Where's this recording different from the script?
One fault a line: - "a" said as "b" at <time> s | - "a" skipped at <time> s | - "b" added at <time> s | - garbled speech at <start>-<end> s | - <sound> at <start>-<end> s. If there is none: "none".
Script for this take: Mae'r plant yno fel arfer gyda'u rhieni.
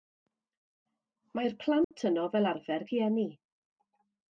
- dropout at 1.8-1.9 s
- "gyda'u" skipped at 2.9 s